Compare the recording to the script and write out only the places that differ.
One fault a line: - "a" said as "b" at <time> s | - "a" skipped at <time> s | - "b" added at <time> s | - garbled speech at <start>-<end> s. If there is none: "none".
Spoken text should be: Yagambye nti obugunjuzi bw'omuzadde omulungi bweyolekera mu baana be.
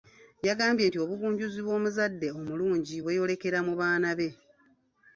none